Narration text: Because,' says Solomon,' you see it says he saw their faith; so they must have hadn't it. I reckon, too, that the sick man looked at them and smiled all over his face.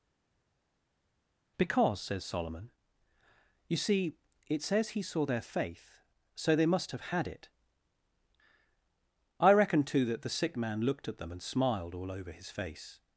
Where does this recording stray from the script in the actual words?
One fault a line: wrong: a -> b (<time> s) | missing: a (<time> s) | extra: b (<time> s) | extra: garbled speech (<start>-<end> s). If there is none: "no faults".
wrong: hadn't -> had (7.1 s)